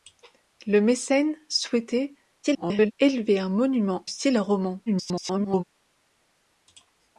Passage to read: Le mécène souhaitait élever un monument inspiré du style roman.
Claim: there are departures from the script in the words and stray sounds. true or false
true